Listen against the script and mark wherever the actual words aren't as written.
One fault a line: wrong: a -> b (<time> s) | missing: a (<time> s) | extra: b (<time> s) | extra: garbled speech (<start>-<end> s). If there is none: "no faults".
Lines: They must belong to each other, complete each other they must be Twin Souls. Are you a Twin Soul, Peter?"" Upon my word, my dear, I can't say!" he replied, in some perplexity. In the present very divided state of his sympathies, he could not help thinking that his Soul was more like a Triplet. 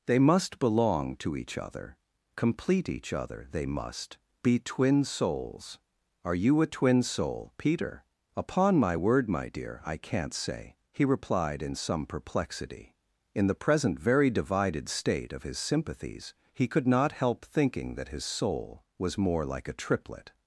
no faults